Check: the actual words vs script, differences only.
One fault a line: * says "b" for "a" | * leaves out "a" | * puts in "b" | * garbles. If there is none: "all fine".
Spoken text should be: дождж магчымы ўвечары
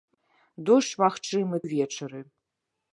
all fine